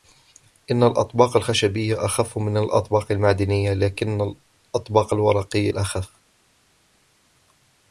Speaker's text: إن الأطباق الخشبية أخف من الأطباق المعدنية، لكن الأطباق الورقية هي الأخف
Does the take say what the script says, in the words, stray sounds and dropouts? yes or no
no